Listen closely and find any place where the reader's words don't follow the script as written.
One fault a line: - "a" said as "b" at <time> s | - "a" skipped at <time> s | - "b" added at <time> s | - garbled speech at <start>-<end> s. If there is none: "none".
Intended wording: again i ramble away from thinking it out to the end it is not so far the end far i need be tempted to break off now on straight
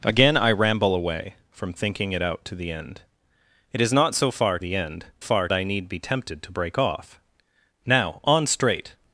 none